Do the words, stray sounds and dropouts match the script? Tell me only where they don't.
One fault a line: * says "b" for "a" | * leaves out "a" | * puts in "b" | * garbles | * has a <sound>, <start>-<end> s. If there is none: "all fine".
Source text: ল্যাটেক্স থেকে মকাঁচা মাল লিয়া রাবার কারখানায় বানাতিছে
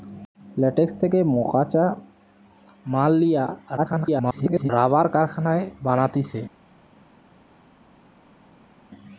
* garbles